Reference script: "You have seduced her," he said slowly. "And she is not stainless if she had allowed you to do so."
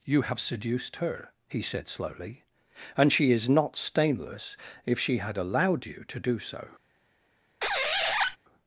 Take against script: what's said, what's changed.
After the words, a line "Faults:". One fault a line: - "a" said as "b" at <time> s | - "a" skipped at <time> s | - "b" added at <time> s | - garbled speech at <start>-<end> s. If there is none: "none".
"You have seduced her," he said slowly. "And she is not stainless if she had allowed you to do so."
Faults:
none